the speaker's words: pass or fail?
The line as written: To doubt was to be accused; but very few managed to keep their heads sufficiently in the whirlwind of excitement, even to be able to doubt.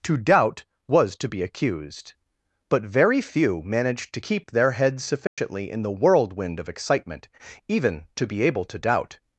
pass